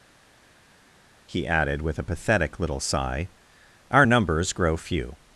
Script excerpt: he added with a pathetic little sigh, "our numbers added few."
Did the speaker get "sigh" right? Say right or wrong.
right